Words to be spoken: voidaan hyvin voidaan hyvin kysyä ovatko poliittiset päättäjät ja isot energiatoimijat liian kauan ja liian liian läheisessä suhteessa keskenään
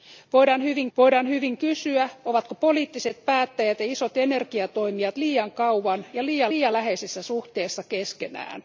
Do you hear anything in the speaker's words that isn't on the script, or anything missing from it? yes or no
no